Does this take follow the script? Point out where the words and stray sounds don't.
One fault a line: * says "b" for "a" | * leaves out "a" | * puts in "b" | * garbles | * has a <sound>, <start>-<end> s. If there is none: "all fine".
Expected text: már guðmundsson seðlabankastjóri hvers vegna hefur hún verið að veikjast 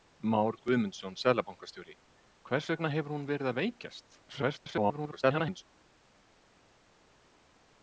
* garbles